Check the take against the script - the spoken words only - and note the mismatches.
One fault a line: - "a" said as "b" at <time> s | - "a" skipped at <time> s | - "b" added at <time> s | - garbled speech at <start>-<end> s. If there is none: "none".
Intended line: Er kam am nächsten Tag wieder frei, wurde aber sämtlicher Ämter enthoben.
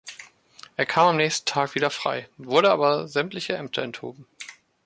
none